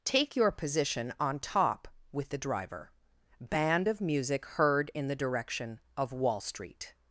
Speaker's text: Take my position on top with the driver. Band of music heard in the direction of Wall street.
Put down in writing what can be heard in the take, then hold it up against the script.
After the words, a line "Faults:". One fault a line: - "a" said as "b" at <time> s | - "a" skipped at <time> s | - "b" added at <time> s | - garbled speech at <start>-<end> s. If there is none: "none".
Take your position on top with the driver. Band of music heard in the direction of Wall street.
Faults:
- "my" said as "your" at 0.3 s